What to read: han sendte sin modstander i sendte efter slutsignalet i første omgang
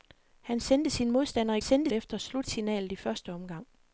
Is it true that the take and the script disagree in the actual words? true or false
false